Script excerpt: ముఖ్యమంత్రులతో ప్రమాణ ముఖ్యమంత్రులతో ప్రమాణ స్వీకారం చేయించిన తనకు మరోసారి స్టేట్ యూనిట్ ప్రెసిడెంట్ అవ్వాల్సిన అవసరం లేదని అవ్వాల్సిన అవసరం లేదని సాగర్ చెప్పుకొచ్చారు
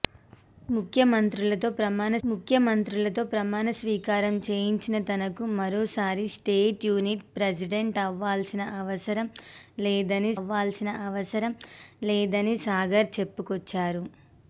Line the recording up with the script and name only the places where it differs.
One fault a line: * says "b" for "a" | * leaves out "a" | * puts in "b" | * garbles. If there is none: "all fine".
all fine